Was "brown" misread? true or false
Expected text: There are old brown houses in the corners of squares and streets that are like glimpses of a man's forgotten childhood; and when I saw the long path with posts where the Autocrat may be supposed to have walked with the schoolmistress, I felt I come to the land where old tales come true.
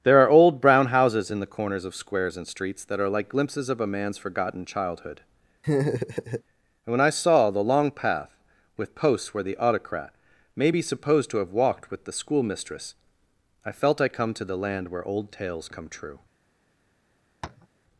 false